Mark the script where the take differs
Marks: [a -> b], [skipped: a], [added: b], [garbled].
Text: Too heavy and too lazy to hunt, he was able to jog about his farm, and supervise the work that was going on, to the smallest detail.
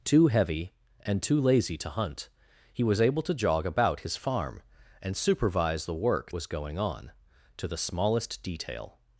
Too heavy and too lazy to hunt, he was able to jog about his farm, and supervise the work [skipped: that] was going on, to the smallest detail.